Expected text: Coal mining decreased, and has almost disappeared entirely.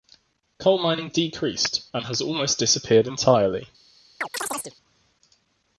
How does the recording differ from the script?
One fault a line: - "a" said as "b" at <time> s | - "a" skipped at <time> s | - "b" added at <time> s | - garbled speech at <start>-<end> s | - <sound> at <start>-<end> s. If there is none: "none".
- chirp at 4.2-4.8 s